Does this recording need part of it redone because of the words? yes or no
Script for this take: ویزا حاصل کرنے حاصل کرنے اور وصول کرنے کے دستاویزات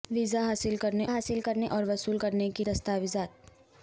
no